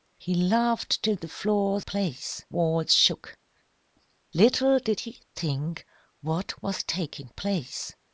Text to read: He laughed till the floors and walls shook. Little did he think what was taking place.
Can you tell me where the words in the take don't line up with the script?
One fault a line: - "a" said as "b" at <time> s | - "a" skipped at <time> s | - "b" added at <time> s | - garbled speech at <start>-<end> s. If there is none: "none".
- "and" said as "place" at 1.8 s